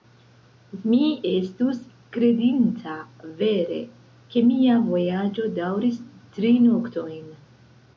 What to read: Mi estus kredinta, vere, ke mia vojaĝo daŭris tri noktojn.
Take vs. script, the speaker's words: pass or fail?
pass